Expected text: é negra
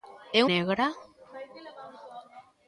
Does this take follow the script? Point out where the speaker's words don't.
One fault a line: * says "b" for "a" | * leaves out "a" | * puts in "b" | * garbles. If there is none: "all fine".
all fine